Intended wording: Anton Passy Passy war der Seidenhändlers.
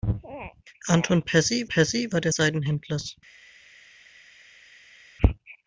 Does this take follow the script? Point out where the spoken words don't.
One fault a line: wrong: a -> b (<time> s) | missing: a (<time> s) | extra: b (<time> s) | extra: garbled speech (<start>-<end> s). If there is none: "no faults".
no faults